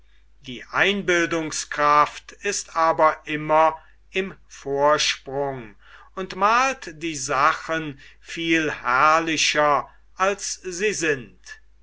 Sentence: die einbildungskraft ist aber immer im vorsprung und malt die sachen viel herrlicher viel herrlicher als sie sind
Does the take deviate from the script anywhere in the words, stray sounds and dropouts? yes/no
yes